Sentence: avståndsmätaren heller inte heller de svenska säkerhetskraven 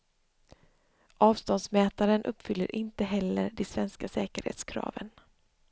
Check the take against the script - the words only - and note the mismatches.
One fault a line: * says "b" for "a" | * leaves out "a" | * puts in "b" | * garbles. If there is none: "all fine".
* says "uppfyller" for "heller"